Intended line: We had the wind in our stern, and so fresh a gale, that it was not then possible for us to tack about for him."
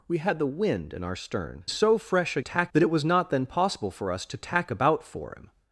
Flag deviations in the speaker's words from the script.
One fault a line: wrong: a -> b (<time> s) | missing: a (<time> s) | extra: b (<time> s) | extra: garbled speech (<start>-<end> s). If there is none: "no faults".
missing: and (1.6 s)
wrong: gale -> tack (2.4 s)